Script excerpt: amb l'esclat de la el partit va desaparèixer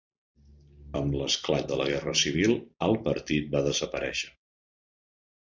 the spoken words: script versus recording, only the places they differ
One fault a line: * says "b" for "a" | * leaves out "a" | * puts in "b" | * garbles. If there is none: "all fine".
* puts in "guerra civil"